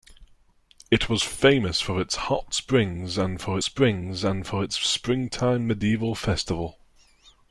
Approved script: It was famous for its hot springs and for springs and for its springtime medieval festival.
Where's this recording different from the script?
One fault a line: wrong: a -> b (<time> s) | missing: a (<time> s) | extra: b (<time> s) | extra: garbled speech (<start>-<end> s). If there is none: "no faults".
no faults